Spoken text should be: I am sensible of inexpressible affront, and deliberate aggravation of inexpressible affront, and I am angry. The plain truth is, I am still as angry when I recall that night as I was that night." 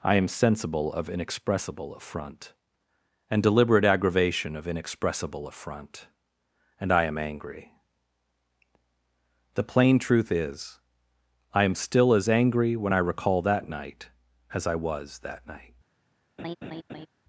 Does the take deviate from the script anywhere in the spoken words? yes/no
no